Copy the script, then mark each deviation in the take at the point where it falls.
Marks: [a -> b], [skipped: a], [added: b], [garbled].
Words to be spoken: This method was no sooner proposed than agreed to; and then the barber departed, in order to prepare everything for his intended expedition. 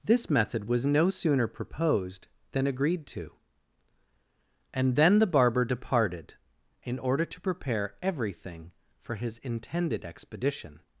This method was no sooner proposed than agreed to; and then the barber departed, in order to prepare everything for his intended expedition.